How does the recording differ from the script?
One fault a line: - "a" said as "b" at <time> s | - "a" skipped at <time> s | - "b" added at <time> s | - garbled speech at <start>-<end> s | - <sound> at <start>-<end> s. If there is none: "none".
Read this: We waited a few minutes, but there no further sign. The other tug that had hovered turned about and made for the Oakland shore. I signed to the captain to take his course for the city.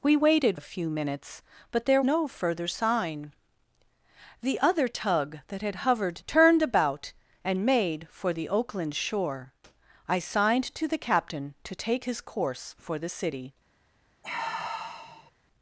- sigh at 14.2-15.3 s